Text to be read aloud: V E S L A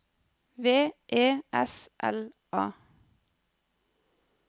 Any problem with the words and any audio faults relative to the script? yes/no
no